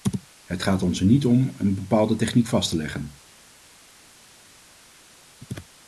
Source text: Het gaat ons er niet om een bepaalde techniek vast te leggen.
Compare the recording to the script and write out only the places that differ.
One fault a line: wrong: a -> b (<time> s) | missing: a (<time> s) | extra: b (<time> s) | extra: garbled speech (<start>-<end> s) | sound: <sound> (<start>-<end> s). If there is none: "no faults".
no faults